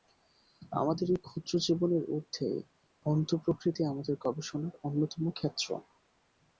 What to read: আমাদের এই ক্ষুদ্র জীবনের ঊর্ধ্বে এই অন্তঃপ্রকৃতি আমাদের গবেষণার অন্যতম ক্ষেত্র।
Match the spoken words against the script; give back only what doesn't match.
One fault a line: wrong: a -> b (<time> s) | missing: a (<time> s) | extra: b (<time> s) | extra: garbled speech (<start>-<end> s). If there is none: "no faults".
missing: এই (2.5 s)